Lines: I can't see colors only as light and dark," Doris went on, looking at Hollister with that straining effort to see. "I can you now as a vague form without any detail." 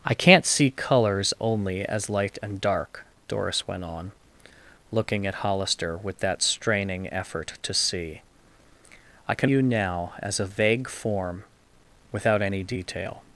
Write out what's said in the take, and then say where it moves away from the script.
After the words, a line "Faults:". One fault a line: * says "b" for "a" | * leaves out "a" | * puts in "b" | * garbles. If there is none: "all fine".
I can't see colors only as light and dark," Doris went on, looking at Hollister with that straining effort to see. "I can you now as a vague form without any detail."
Faults:
all fine